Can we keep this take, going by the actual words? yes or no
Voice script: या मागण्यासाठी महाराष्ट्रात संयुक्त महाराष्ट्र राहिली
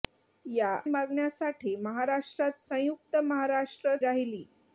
yes